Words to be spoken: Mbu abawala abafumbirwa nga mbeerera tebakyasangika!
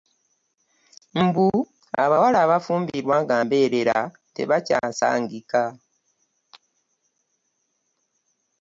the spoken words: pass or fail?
pass